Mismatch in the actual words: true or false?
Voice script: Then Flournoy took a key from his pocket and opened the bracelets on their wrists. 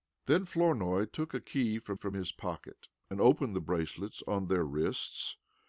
true